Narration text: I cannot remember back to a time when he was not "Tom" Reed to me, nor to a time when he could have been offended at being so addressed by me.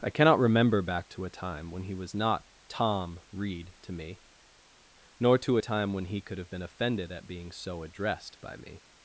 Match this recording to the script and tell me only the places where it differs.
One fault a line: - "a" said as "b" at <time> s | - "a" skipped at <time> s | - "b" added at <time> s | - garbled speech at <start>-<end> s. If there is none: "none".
none